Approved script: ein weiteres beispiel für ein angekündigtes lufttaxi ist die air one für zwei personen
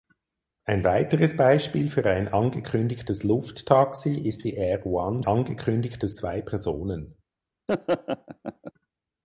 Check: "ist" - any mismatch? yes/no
no